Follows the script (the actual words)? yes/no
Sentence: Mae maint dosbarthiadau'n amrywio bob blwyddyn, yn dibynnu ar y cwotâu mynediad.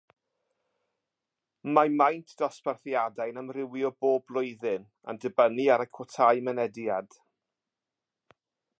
yes